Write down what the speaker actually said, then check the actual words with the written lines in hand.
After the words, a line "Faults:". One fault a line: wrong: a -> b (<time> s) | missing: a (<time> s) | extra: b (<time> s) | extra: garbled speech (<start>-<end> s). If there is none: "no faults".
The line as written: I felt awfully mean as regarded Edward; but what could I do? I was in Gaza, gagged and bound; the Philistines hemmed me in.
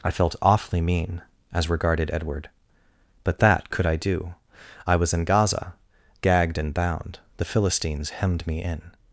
I felt awfully mean as regarded Edward; but that could I do? I was in Gaza, gagged and bound; the Philistines hemmed me in.
Faults:
wrong: what -> that (3.4 s)